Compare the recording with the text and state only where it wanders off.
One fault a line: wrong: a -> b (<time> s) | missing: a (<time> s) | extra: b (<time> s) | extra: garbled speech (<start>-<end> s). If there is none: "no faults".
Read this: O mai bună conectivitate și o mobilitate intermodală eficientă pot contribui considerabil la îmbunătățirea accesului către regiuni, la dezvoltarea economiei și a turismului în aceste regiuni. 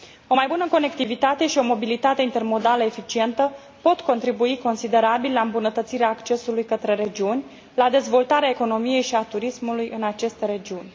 no faults